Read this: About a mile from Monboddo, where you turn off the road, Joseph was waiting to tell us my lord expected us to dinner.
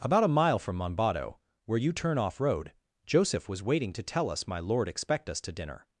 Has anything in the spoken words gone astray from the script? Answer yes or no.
yes